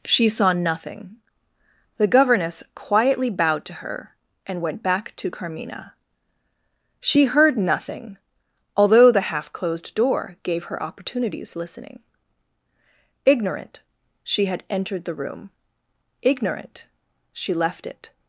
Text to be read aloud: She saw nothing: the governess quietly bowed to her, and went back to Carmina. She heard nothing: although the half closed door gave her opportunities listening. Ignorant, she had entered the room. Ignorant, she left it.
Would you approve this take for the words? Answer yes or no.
yes